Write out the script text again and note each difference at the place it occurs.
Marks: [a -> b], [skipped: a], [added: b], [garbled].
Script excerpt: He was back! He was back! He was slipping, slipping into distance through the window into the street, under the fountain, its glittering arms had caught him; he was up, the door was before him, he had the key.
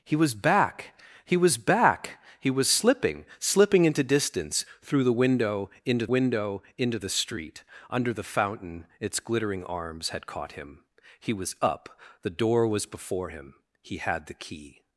He was back! He was back! He was slipping, slipping into distance through the window into [added: window into] the street, under the fountain, its glittering arms had caught him; he was up, the door was before him, he had the key.